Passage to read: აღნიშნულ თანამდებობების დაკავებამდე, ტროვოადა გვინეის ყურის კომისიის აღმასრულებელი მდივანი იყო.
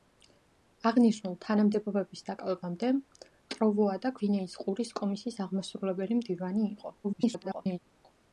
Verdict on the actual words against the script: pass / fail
fail